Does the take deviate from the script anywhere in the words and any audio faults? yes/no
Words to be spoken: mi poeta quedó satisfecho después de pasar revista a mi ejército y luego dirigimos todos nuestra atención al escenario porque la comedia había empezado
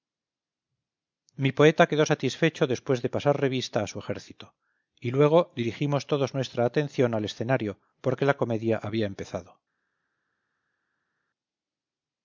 yes